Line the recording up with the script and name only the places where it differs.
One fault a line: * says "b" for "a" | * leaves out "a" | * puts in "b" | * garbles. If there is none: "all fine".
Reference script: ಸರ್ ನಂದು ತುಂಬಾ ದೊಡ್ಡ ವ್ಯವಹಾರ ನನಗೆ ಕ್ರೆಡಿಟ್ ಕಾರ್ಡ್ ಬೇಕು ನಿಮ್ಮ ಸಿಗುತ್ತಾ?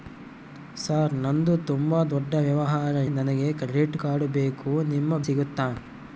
all fine